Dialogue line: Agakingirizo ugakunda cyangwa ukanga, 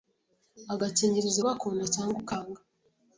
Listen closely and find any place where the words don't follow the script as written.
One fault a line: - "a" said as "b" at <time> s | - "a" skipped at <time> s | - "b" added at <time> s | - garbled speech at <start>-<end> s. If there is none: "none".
none